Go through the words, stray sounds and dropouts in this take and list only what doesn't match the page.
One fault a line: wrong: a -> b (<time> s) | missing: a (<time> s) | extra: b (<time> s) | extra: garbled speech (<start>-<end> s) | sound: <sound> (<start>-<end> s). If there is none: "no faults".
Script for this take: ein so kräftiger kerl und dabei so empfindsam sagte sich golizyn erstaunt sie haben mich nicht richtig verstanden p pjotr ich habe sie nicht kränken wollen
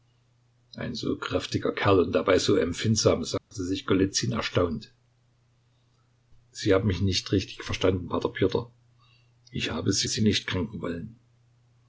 sound: dropout (3.4-3.5 s)
extra: sie (10.1 s)